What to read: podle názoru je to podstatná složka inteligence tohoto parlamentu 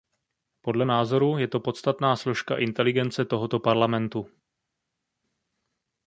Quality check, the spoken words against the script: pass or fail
pass